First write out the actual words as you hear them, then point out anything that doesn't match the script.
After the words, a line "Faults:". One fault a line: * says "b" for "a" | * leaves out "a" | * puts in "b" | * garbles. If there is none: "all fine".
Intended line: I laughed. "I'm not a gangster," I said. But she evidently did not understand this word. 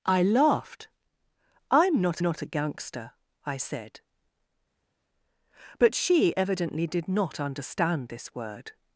I laughed. "I'm not not a gangster," I said. But she evidently did not understand this word.
Faults:
* puts in "not"